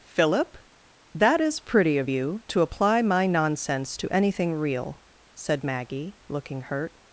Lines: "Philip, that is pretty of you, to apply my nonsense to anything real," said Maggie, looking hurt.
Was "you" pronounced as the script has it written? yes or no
yes